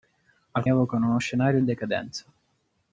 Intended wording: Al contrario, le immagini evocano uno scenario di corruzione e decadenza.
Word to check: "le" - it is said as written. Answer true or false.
false